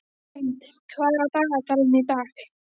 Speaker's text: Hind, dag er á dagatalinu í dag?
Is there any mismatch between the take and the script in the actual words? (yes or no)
yes